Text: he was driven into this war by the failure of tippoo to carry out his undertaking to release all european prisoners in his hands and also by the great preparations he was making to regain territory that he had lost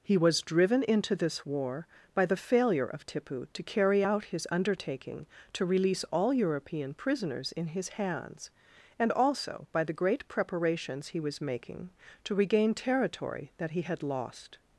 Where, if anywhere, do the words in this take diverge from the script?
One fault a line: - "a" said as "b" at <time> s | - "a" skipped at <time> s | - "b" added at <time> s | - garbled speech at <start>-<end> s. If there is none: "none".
none